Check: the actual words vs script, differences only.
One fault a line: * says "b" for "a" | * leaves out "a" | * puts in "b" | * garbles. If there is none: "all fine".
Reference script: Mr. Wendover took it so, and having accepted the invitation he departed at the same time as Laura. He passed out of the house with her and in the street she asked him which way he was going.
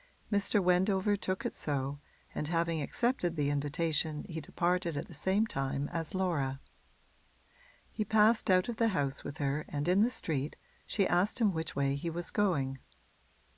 all fine